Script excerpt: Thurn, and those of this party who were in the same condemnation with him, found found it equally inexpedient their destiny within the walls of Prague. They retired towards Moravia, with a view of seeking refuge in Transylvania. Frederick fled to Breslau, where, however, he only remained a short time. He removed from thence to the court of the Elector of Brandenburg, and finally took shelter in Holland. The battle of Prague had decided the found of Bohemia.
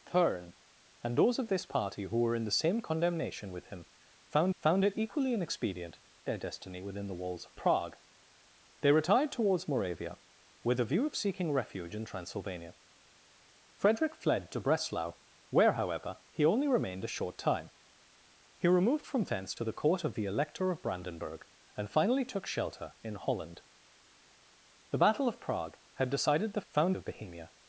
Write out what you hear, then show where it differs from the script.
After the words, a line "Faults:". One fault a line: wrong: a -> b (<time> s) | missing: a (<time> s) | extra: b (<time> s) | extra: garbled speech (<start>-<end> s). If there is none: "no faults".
Thurn, and those of this party who were in the same condemnation with him, found found it equally inexpedient their destiny within the walls of Prague. They retired towards Moravia, with a view of seeking refuge in Transylvania. Frederick fled to Breslau, where, however, he only remained a short time. He removed from thence to the court of the Elector of Brandenburg, and finally took shelter in Holland. The battle of Prague had decided the found of Bohemia.
Faults:
no faults